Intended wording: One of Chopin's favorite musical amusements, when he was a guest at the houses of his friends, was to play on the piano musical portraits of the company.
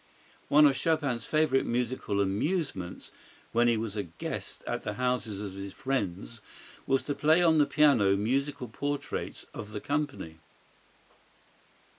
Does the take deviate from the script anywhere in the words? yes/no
no